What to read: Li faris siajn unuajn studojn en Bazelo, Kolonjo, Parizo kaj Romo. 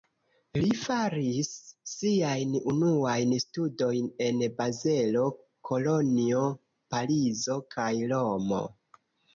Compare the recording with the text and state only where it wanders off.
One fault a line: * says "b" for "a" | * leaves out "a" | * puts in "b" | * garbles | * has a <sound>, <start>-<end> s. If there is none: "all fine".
all fine